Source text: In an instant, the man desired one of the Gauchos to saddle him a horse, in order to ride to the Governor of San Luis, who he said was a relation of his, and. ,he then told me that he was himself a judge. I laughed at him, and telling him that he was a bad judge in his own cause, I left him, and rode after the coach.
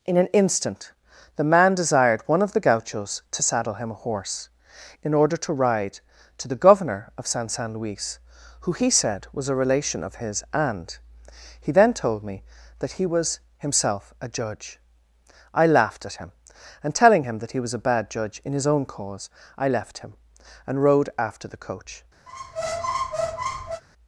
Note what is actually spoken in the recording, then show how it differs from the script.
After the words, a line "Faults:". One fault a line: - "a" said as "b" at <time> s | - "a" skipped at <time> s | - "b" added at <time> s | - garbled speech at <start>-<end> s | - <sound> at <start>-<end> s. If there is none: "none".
In an instant, the man desired one of the Gauchos to saddle him a horse, in order to ride to the Governor of San San Luis, who he said was a relation of his, and. ,he then told me that he was himself a judge. I laughed at him, and telling him that he was a bad judge in his own cause, I left him, and rode after the coach.
Faults:
- "San" added at 7.5 s
- squeak at 22.3-23.8 s